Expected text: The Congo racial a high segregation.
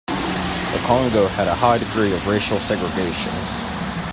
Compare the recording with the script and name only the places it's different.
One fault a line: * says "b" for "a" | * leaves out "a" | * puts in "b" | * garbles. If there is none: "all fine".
* says "had" for "racial"
* puts in "degree of racial"